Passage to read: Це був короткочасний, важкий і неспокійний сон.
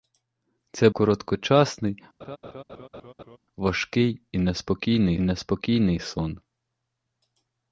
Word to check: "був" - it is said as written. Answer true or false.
false